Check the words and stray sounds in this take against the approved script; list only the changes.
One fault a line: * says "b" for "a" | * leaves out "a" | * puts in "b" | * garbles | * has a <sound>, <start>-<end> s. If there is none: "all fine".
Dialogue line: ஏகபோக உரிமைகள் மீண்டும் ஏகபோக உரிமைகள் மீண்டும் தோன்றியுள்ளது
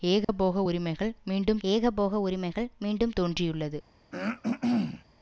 * has a dropout, 0.2-0.3 s
* has a throat clearing, 4.1-5.0 s